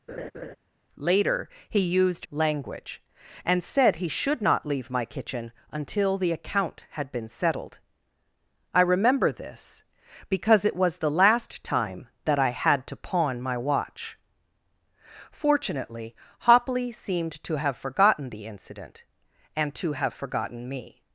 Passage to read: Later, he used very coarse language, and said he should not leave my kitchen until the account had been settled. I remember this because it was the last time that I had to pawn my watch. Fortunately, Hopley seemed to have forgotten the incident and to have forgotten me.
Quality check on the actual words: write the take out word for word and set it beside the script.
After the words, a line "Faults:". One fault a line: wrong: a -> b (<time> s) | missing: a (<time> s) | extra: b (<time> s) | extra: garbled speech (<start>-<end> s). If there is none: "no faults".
Later, he used language, and said he should not leave my kitchen until the account had been settled. I remember this because it was the last time that I had to pawn my watch. Fortunately, Hopley seemed to have forgotten the incident and to have forgotten me.
Faults:
missing: very coarse (2.3 s)